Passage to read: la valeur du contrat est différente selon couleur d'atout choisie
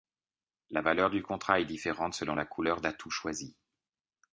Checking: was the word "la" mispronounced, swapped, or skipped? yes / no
no